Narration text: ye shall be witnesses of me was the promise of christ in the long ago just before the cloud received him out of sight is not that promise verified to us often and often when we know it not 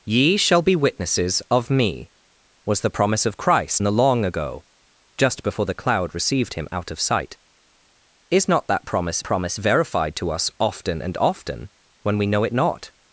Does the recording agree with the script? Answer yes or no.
no